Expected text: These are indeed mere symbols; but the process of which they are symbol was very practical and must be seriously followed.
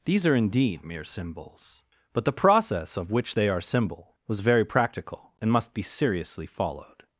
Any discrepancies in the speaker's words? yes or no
no